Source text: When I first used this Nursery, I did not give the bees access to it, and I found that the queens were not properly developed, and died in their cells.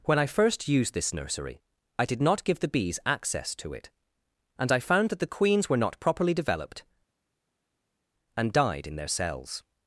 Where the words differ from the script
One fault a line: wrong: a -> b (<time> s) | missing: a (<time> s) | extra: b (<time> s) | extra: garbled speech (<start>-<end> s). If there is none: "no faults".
no faults